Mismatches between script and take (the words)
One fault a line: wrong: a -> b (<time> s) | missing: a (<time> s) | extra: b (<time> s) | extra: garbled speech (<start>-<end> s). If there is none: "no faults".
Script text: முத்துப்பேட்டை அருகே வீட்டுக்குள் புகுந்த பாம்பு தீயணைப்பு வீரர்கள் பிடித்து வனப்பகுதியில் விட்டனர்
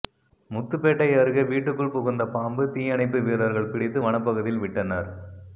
no faults